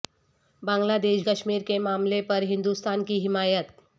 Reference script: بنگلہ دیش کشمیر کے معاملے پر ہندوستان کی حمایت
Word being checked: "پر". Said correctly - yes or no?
yes